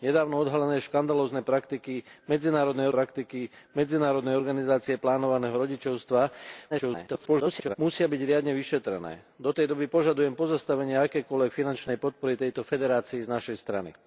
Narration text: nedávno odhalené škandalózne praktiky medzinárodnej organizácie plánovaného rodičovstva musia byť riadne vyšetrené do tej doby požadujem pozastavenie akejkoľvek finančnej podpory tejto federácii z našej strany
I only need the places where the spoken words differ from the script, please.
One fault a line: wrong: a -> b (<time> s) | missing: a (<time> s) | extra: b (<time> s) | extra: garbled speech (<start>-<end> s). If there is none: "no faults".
extra: praktiky medzinárodnej (2.9 s)
extra: garbled speech (6.7-7.8 s)